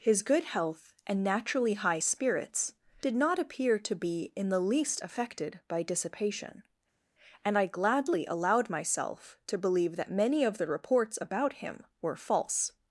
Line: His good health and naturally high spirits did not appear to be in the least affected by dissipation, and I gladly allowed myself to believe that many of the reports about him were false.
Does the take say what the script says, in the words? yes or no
yes